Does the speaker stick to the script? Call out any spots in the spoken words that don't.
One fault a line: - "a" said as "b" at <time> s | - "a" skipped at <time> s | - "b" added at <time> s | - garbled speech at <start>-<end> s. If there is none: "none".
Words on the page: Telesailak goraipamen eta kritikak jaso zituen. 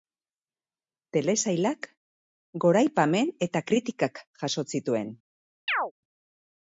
none